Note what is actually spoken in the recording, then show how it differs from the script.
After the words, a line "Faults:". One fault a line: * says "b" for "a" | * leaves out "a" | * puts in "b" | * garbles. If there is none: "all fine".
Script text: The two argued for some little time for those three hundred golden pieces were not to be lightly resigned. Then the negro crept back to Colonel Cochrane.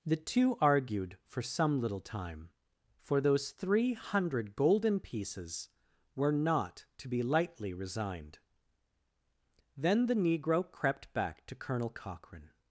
The two argued for some little time for those three hundred golden pieces were not to be lightly resigned. Then the negro crept back to Colonel Cochrane.
Faults:
all fine